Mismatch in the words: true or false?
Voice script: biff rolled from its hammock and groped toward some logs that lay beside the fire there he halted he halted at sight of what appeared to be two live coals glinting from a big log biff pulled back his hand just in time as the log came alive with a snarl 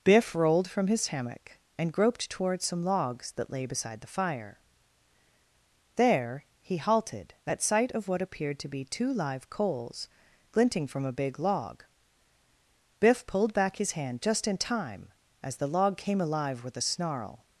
true